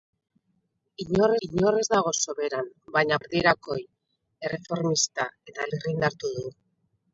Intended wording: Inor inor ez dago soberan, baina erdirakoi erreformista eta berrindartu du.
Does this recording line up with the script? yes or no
yes